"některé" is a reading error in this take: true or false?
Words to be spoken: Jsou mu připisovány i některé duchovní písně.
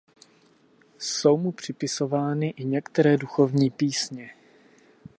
false